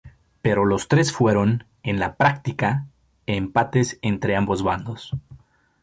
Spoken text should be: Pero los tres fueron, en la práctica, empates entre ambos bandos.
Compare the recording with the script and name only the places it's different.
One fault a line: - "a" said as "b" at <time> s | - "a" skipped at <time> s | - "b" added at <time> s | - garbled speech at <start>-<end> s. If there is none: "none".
none